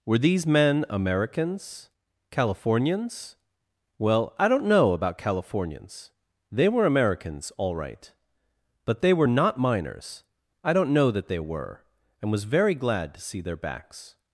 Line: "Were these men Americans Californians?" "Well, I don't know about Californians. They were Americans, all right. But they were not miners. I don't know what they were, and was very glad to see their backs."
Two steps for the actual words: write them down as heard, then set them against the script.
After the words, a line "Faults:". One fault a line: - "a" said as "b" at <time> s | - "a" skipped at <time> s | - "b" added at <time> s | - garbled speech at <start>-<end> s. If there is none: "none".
"Were these men Americans Californians?" "Well, I don't know about Californians. They were Americans, all right. But they were not miners. I don't know that they were, and was very glad to see their backs."
Faults:
- "what" said as "that" at 11.1 s